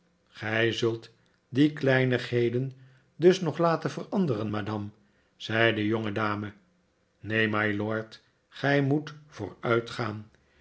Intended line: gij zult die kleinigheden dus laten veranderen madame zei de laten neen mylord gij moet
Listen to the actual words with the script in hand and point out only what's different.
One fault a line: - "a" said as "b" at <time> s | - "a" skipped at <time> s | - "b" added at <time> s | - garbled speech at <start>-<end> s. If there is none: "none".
- "nog" added at 3.4 s
- "laten" said as "jongedame" at 5.9 s